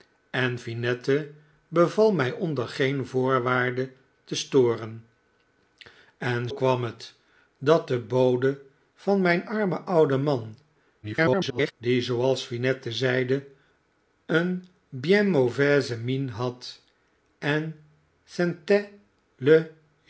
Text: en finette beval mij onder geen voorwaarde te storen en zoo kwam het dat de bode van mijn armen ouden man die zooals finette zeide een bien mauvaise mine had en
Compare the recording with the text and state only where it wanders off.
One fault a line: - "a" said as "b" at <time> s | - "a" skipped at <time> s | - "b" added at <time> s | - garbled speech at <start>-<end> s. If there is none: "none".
- "zoo" skipped at 6.5 s
- garbled speech at 11.0-11.7 s